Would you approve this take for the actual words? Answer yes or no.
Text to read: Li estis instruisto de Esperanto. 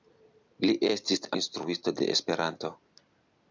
yes